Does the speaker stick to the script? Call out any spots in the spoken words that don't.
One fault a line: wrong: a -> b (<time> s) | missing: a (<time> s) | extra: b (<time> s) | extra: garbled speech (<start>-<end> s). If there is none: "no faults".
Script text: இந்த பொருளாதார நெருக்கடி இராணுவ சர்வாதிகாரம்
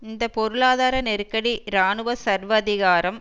no faults